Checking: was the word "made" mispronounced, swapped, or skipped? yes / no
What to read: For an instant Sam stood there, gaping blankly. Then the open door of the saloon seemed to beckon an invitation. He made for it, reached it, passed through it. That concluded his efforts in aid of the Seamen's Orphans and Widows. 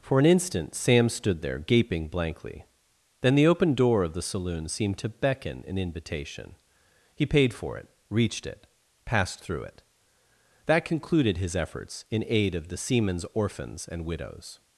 yes